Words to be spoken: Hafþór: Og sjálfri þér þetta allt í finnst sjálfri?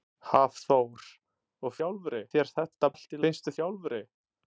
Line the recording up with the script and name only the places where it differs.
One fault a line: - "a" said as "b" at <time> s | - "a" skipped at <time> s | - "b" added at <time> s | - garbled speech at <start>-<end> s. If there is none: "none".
none